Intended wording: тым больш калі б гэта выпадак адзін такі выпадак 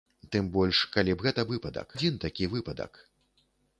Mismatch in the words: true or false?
false